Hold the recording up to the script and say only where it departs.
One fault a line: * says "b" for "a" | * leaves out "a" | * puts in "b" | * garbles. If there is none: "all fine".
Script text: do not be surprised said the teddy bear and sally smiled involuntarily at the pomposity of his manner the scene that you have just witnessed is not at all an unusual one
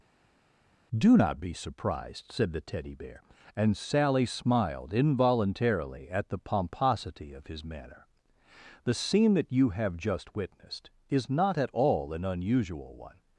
all fine